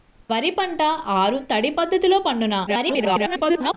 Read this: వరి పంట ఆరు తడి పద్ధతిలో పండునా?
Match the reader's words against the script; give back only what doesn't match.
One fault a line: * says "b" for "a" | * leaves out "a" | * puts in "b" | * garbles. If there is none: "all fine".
* garbles